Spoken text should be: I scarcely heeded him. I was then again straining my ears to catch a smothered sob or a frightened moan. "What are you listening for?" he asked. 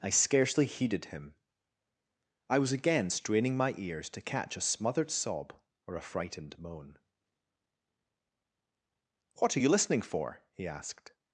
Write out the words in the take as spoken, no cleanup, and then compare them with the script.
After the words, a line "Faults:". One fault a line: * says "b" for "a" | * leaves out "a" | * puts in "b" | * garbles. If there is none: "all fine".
I scarcely heeded him. I was again straining my ears to catch a smothered sob or a frightened moan. "What are you listening for?" he asked.
Faults:
* leaves out "then"